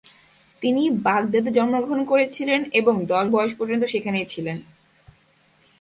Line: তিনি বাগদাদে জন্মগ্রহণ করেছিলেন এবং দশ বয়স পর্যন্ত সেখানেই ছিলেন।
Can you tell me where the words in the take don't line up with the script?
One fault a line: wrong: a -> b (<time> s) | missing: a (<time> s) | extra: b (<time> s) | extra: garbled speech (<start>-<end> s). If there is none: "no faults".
no faults